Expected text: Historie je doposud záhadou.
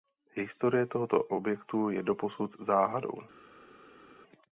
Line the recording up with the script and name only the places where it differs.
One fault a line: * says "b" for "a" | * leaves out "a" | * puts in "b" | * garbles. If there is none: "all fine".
* puts in "tohoto objektu"